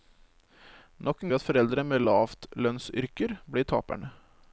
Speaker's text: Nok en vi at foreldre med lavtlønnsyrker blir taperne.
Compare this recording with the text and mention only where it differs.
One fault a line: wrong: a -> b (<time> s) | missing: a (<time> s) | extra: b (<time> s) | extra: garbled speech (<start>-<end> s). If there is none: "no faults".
no faults